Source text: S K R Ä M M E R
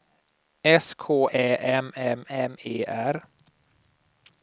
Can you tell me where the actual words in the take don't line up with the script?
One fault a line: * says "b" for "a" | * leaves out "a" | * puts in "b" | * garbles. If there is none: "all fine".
* says "Ä M" for "R Ä"